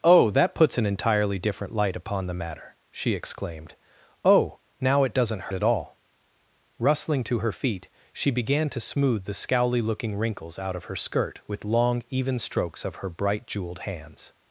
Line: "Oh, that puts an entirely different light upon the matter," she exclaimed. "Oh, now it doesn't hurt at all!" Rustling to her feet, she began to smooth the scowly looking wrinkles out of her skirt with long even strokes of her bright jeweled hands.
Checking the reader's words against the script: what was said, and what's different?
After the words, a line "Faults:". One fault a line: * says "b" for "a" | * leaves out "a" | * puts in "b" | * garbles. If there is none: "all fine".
"Oh, that puts an entirely different light upon the matter," she exclaimed. "Oh, now it doesn't at all!" Rustling to her feet, she began to smooth the scowly looking wrinkles out of her skirt with long even strokes of her bright jeweled hands.
Faults:
* leaves out "hurt"